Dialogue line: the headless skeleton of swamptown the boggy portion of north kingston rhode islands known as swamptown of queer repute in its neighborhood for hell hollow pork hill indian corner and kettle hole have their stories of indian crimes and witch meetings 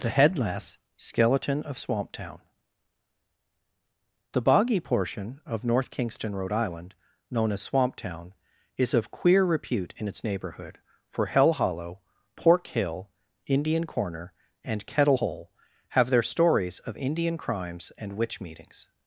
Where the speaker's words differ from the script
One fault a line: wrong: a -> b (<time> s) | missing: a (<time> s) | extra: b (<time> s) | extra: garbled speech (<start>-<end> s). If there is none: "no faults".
wrong: islands -> island (6.5 s)
extra: is (8.8 s)